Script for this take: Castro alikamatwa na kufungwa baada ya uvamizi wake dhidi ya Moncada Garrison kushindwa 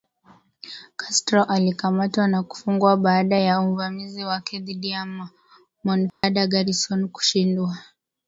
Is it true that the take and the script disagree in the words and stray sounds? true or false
true